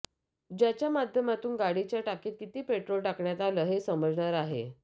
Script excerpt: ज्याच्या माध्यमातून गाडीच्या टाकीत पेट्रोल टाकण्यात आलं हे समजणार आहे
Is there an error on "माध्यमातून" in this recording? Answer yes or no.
no